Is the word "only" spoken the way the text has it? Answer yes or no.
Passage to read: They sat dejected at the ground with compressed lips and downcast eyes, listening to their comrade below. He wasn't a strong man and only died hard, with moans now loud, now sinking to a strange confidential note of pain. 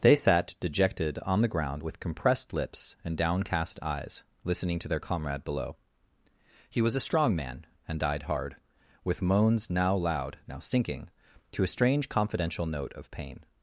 no